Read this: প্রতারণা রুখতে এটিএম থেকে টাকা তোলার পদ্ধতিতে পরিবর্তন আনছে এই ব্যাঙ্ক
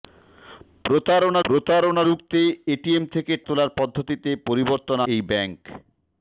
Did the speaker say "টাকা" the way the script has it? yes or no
no